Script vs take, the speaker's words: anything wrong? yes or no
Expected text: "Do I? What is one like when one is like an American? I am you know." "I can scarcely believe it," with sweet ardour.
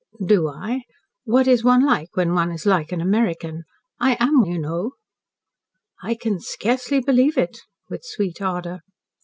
no